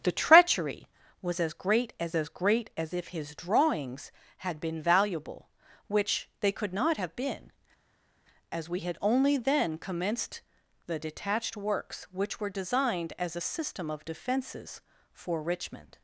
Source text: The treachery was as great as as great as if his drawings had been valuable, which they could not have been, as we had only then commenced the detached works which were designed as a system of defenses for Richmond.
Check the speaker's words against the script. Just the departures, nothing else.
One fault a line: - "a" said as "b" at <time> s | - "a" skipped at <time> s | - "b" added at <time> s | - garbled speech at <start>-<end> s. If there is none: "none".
none